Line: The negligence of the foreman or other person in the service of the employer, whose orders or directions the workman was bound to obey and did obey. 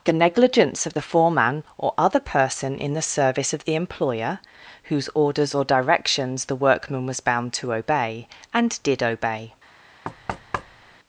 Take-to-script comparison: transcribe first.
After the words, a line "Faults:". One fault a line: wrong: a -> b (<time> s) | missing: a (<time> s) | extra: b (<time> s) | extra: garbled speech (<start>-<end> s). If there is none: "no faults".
The negligence of the foreman or other person in the service of the employer, whose orders or directions the workman was bound to obey and did obey.
Faults:
no faults